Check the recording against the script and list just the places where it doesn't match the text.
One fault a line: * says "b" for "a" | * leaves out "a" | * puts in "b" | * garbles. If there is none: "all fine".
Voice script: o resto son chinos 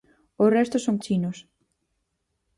all fine